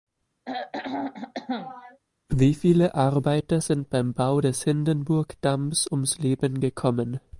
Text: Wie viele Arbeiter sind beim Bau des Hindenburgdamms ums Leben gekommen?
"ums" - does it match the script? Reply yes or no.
yes